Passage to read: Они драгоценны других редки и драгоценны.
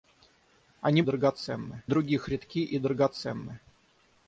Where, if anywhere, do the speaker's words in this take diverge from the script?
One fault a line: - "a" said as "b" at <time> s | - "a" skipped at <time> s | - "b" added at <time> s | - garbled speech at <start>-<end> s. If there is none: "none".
none